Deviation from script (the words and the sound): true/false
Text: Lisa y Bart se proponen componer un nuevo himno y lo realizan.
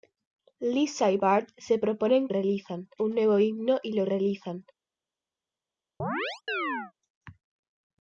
true